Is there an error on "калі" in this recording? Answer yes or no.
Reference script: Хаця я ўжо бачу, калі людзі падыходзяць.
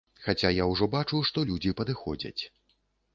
yes